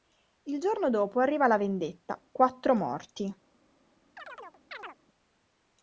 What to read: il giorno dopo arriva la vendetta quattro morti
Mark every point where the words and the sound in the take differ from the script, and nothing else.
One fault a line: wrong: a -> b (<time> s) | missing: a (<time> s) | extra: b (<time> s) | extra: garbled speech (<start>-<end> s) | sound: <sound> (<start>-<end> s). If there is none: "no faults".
sound: chirp (4.2-5.0 s)